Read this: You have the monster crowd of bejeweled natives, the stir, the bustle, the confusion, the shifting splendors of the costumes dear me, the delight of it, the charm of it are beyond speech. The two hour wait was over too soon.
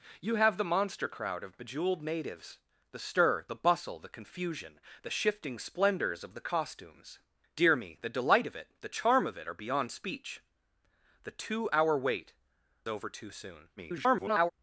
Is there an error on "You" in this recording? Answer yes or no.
no